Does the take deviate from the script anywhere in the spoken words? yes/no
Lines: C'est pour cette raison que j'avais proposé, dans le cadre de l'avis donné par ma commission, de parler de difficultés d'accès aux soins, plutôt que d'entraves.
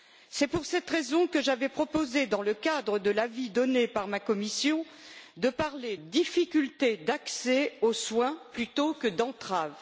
yes